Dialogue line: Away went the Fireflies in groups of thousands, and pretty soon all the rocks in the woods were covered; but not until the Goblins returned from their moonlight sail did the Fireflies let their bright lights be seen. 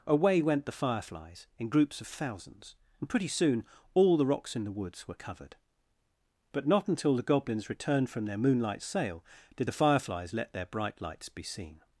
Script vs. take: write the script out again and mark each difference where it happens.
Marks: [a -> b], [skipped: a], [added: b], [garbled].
Away went the Fireflies in groups of thousands, and pretty soon all the rocks in the woods were covered; but not until the Goblins returned from their moonlight sail did the Fireflies let their bright lights be seen.